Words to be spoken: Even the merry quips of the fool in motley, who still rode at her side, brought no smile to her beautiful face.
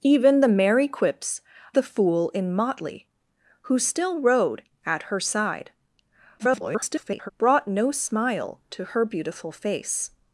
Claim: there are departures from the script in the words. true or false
true